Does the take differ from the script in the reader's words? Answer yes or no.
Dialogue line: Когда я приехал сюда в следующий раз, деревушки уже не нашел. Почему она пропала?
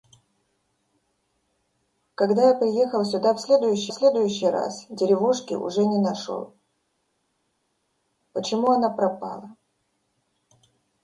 yes